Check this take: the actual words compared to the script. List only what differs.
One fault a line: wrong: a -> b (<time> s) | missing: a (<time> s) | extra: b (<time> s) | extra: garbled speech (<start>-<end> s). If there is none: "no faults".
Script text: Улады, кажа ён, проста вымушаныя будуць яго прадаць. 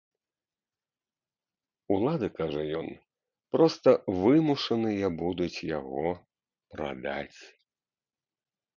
no faults